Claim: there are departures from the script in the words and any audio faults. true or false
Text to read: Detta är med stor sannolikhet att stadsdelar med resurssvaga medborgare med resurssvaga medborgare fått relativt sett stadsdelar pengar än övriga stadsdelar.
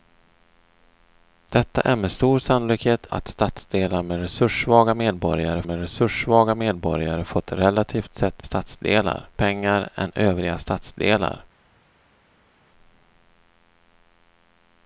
false